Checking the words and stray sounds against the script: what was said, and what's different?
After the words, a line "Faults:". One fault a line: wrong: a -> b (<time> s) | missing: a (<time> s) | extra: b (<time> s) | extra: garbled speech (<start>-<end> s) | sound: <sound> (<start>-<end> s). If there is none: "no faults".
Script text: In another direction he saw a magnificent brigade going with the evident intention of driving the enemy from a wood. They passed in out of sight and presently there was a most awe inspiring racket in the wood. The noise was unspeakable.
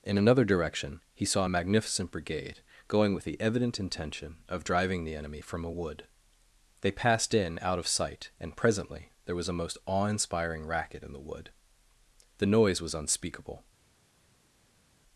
In another direction he saw a magnificent brigade going with the evident intention of driving the enemy from a wood. They passed in out of sight and presently there was a most awe inspiring racket in the wood. The noise was unspeakable.
Faults:
no faults